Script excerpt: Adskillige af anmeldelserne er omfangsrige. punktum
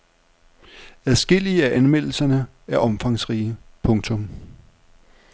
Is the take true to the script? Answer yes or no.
yes